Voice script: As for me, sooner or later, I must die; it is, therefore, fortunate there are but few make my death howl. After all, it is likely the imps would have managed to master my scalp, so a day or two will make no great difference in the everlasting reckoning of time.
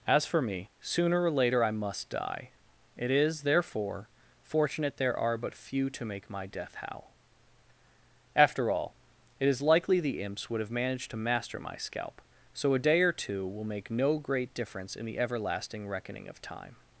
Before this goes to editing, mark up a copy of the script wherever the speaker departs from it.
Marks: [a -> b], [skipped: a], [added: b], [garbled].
As for me, sooner or later, I must die; it is, therefore, fortunate there are but few [added: to] make my death howl. After all, it is likely the imps would have managed to master my scalp, so a day or two will make no great difference in the everlasting reckoning of time.